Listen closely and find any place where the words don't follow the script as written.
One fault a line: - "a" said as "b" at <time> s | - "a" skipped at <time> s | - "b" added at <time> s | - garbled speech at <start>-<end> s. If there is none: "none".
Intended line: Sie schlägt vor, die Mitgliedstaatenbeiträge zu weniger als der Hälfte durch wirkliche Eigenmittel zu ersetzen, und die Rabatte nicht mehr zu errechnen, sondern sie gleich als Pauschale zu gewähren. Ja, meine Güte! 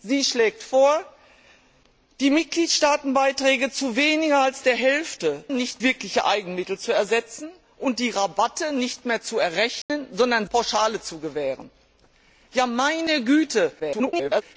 - "durch" said as "nicht" at 5.5 s
- "sie gleich als" skipped at 10.5 s
- garbled speech at 13.8-14.4 s